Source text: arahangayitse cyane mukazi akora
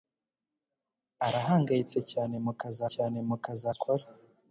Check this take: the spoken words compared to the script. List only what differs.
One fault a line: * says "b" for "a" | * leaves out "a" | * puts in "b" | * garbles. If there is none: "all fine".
* puts in "cyane mukazi"